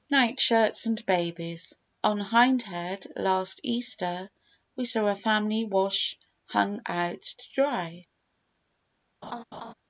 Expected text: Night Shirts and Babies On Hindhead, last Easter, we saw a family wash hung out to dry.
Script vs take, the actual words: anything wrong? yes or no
no